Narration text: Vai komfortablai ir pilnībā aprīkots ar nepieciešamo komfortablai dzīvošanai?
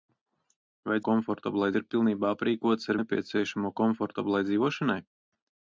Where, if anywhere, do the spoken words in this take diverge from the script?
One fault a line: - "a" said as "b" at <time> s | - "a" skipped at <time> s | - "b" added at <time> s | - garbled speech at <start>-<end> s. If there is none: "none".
none